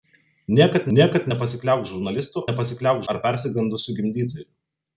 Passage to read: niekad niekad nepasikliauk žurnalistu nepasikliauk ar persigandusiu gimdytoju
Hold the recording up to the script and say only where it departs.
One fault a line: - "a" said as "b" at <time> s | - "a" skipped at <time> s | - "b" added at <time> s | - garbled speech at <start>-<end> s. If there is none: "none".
none